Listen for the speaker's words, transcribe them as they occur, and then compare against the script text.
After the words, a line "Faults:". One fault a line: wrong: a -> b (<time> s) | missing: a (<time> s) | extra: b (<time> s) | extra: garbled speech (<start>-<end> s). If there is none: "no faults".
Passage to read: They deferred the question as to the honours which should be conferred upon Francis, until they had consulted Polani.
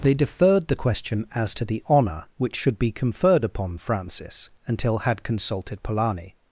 They deferred the question as to the honour which should be conferred upon Francis, until had consulted Polani.
Faults:
wrong: honours -> honour (1.9 s)
missing: they (5.0 s)